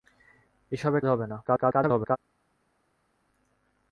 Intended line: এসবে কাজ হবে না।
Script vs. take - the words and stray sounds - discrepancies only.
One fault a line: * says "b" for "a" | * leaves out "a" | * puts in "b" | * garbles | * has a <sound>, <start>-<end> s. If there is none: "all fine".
* leaves out "কাজ"
* garbles